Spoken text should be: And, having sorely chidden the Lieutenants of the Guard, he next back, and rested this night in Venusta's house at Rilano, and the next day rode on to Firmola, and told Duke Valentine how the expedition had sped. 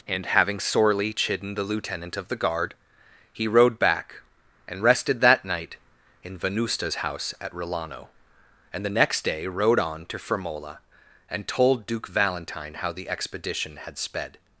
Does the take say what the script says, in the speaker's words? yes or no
no